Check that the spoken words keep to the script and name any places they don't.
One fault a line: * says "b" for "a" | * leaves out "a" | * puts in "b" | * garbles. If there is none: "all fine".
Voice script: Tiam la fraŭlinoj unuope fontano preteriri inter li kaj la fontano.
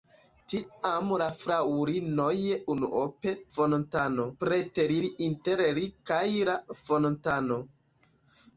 all fine